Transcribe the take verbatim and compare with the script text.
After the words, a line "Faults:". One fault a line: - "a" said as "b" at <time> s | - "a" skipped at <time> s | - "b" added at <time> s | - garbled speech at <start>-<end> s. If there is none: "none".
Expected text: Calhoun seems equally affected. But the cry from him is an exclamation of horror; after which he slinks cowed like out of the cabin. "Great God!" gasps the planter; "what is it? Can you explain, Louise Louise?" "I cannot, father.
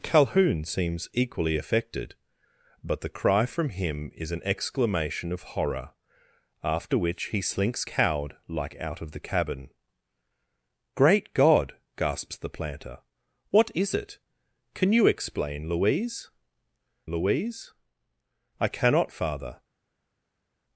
Calhoun seems equally affected. But the cry from him is an exclamation of horror; after which he slinks cowed like out of the cabin. "Great God!" gasps the planter; "what is it? Can you explain, Louise Louise?" "I cannot, father.
Faults:
none